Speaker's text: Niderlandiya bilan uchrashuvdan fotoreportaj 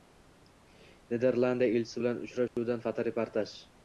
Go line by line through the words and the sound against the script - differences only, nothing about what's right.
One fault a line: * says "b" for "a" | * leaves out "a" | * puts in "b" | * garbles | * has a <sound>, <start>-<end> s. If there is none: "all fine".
* puts in "elchisi"
* has a dropout, 2.5-2.6 s